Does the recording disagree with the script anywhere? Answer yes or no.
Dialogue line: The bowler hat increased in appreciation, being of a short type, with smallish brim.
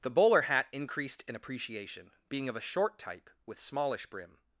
no